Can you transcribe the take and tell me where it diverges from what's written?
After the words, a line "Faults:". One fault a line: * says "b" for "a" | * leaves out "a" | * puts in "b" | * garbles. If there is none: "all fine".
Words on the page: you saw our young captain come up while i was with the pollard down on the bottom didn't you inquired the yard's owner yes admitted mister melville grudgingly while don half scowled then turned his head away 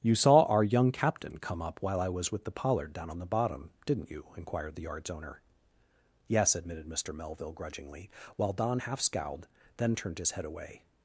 you saw our young captain come up while i was with the pollard down on the bottom didn't you inquired the yard's owner yes admitted mister melville grudgingly while don half scowled then turned his head away
Faults:
all fine